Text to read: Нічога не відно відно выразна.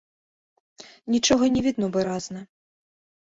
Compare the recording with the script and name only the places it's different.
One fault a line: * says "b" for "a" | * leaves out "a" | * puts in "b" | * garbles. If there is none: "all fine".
* leaves out "відно"